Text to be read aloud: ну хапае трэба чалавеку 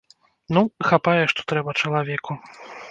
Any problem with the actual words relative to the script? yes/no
yes